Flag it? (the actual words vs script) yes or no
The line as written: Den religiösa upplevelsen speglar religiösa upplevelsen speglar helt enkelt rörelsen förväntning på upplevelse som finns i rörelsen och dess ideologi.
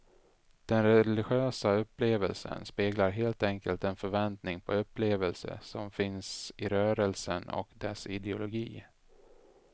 yes